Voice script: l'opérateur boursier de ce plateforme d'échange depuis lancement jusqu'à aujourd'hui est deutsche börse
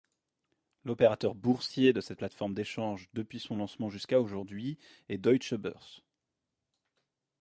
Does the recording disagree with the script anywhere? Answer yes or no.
yes